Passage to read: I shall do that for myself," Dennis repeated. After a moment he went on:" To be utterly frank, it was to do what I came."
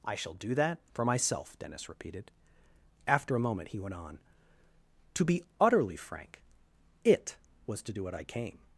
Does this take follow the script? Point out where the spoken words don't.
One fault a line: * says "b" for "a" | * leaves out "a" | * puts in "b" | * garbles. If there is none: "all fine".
all fine